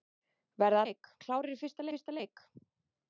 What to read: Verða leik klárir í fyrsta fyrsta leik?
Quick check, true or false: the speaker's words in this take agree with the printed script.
true